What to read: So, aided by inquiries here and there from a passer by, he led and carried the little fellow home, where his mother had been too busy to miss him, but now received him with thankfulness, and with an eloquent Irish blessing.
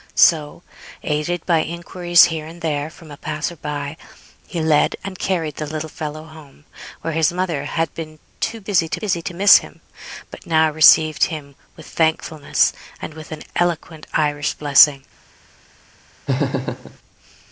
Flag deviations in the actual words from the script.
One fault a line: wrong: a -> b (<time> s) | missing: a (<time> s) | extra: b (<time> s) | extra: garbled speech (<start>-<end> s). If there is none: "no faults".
extra: busy to (9.0 s)